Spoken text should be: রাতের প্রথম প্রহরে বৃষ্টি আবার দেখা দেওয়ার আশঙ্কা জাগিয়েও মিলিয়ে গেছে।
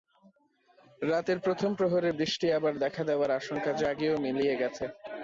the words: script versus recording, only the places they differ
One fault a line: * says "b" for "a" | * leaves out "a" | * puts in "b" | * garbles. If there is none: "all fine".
all fine